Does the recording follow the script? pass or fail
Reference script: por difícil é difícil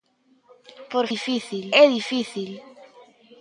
pass